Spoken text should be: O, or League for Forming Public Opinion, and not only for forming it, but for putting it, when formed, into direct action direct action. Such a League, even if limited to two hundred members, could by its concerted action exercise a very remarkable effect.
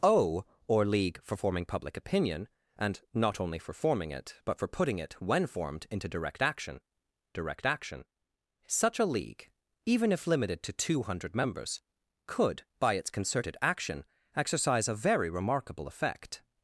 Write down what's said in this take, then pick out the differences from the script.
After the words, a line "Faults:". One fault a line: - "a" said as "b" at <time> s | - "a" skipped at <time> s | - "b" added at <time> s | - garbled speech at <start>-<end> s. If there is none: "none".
O, or League for Forming Public Opinion, and not only for forming it, but for putting it, when formed, into direct action direct action. Such a League, even if limited to two hundred members, could by its concerted action exercise a very remarkable effect.
Faults:
none